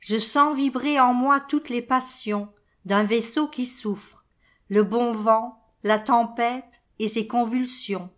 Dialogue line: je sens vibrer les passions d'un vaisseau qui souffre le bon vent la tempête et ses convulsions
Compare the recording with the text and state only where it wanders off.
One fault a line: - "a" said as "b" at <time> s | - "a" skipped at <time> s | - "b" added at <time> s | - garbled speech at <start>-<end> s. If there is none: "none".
- "en moi toutes" added at 1.0 s